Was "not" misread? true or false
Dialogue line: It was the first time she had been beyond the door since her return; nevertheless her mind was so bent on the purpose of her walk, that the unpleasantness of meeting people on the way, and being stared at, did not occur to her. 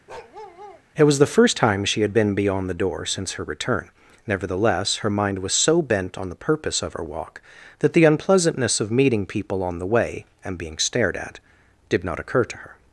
false